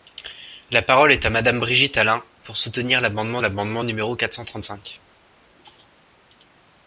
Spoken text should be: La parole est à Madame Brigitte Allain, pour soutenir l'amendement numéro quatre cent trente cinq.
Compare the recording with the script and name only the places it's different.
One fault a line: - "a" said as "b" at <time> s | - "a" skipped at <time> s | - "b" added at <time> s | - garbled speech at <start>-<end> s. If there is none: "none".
- "l'amendement" added at 3.4 s